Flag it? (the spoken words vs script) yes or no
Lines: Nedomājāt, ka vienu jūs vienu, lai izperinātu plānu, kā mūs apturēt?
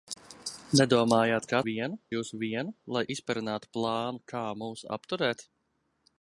no